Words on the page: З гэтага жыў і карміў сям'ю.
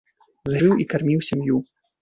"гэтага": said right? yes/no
no